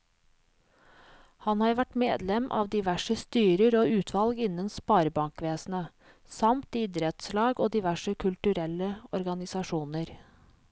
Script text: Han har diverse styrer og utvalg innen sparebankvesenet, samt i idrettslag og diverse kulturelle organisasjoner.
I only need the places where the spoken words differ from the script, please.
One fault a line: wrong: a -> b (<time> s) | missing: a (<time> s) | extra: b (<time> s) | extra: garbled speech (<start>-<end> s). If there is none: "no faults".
extra: vært medlem av (1.8 s)